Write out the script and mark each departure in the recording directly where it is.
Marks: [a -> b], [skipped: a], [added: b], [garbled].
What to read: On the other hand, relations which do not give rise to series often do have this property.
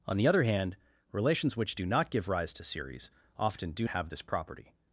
On the other hand, relations which do not give rise to series often do have this property.